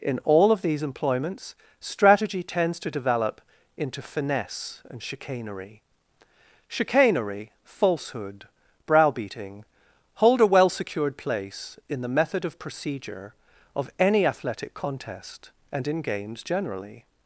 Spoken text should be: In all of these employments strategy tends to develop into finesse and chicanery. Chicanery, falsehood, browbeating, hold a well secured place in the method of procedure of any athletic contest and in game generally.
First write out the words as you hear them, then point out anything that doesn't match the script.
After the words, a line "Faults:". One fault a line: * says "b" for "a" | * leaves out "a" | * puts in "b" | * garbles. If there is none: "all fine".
In all of these employments strategy tends to develop into finesse and chicanery. Chicanery, falsehood, browbeating, hold a well secured place in the method of procedure of any athletic contest and in games generally.
Faults:
* says "games" for "game"